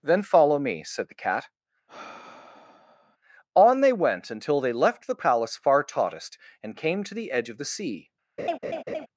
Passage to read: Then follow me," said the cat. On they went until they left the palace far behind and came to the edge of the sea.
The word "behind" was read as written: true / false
false